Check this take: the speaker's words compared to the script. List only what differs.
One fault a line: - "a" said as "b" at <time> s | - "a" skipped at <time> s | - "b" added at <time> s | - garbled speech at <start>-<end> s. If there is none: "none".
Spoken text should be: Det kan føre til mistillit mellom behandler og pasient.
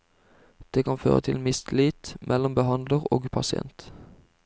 none